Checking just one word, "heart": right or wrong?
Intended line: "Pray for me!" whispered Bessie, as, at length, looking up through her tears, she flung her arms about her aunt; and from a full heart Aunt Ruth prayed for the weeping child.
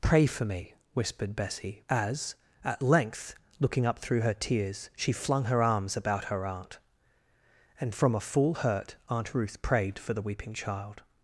wrong